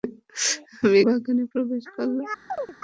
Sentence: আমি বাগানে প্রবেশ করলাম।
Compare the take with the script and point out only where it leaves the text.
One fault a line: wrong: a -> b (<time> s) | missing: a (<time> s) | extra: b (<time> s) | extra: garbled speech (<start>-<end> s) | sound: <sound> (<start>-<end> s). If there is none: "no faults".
sound: chirp (2.5-2.7 s)